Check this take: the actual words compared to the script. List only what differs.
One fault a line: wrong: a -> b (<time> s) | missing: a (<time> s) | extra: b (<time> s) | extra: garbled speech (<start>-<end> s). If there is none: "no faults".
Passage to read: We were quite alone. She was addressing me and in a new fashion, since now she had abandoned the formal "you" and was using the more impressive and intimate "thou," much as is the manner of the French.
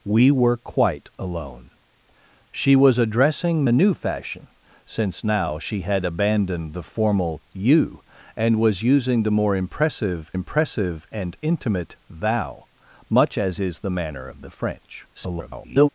missing: me and in (3.7 s)
extra: impressive (10.3 s)
extra: garbled speech (15.1-15.9 s)